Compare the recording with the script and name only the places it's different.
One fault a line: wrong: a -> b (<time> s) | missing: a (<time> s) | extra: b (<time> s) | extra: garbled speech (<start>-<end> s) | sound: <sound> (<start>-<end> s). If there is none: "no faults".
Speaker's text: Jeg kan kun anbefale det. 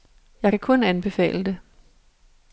no faults